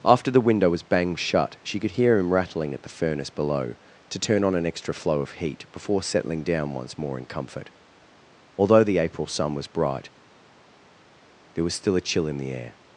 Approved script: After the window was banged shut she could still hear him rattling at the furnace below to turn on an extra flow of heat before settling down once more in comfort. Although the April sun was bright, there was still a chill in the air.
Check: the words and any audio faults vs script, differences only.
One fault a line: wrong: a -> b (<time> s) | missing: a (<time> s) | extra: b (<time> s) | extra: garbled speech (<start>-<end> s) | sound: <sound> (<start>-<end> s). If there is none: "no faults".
missing: still (1.9 s)